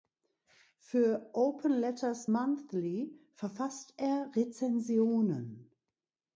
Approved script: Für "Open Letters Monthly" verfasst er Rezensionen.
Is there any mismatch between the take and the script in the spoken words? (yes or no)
no